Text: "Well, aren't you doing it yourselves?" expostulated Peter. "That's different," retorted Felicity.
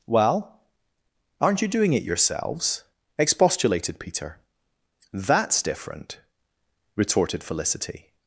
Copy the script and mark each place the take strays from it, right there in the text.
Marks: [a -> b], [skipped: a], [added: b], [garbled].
"Well, aren't you doing it yourselves?" expostulated Peter. "That's different," retorted Felicity.